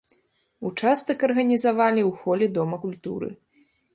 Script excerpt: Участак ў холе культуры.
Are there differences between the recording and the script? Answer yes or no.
yes